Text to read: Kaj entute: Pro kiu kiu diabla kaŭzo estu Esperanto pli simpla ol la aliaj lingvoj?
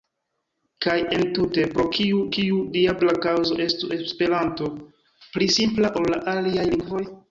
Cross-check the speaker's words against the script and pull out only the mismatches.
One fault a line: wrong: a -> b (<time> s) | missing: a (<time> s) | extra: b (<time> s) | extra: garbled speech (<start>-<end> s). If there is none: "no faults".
no faults